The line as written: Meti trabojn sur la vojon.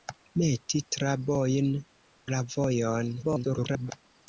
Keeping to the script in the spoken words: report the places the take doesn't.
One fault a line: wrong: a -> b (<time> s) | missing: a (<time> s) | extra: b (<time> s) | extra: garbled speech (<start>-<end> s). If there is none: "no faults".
missing: sur (1.7 s)
extra: garbled speech (3.2-3.9 s)